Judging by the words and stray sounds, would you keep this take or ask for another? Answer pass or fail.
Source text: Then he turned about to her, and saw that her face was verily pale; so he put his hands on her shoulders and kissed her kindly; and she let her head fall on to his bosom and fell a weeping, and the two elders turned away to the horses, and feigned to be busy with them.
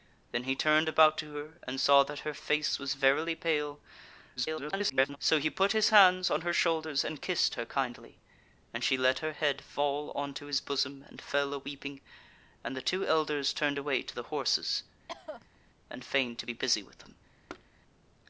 fail